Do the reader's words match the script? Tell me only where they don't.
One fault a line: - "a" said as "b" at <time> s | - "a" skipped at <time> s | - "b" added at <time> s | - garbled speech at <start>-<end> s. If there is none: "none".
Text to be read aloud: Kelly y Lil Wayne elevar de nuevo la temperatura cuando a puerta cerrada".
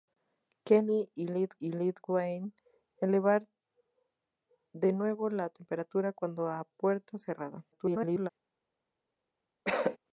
- "y Lil" added at 1.6 s
- garbled speech at 7.7-8.3 s